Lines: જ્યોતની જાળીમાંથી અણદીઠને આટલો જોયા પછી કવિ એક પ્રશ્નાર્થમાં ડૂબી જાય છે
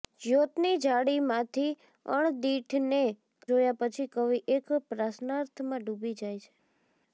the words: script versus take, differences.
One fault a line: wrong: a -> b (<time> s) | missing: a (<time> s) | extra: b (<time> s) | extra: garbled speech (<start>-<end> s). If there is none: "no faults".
missing: આટલો (3.0 s)